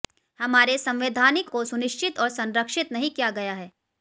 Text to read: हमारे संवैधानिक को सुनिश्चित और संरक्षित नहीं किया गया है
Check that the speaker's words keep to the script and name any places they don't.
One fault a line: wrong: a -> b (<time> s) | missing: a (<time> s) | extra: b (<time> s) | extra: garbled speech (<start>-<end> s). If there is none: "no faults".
no faults